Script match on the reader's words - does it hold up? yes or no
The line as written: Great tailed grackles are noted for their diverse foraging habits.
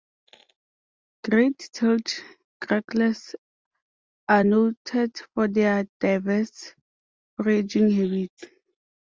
yes